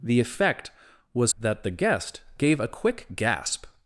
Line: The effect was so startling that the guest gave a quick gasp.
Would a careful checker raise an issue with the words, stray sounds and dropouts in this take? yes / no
yes